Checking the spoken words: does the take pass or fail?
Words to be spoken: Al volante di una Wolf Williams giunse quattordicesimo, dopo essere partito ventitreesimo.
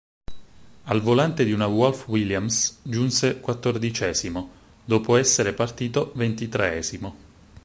pass